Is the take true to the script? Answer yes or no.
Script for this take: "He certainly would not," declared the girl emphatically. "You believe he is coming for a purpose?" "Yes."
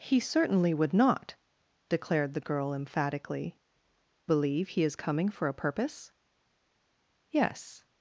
no